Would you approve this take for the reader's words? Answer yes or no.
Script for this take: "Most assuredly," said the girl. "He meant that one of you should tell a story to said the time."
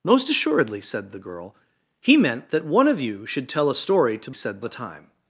yes